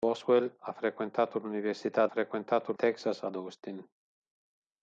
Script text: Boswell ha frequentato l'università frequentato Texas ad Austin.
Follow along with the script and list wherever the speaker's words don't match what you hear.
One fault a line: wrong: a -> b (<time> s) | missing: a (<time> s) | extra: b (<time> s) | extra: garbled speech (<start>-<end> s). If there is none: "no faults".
no faults